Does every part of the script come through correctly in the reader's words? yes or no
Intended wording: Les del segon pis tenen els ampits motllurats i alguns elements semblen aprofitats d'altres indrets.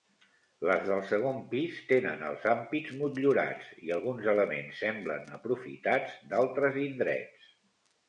yes